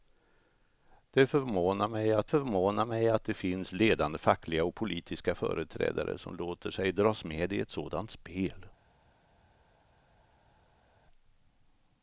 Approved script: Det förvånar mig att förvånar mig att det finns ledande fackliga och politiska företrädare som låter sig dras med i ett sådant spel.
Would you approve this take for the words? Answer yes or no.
yes